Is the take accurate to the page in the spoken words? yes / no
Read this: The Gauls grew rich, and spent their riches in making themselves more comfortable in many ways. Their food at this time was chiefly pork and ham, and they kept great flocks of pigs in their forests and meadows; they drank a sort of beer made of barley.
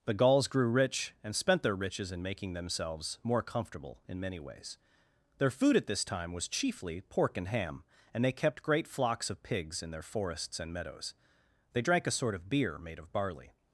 yes